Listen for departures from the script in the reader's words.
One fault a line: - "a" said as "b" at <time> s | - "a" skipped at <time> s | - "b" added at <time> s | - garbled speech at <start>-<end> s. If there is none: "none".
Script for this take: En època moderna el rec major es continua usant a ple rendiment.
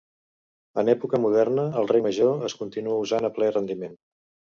none